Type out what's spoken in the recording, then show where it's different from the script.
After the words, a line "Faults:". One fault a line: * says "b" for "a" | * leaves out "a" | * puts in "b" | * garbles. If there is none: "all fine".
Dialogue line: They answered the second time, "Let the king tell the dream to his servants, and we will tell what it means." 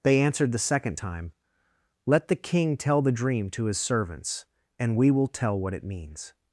They answered the second time, "Let the king tell the dream to his servants, and we will tell what it means."
Faults:
all fine